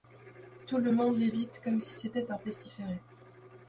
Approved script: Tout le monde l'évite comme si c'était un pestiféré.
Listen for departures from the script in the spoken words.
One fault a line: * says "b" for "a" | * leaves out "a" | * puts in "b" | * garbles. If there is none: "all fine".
all fine